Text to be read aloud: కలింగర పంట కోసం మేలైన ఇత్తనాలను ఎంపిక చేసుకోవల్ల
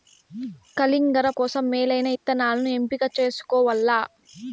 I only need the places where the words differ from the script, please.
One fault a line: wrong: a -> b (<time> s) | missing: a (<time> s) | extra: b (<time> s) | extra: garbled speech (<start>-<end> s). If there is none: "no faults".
missing: పంట (1.3 s)